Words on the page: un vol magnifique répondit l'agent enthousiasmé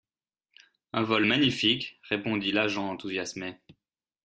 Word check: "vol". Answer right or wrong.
right